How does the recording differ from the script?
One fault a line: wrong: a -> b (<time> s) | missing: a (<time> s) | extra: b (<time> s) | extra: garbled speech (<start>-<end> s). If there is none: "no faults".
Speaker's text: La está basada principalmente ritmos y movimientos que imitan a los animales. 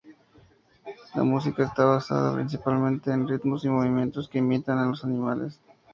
extra: música (1.2 s)
extra: en (3.1 s)